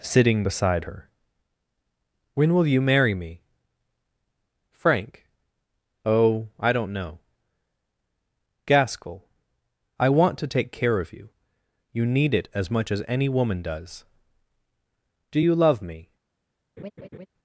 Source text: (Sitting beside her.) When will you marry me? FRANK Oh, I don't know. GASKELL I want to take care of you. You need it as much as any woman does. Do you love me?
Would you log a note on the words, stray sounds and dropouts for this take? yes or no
yes